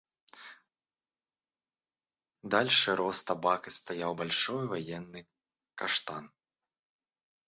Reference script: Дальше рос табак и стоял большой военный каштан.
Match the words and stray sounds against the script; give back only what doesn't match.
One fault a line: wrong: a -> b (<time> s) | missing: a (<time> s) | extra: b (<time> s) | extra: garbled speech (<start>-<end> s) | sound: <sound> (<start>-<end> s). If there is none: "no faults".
no faults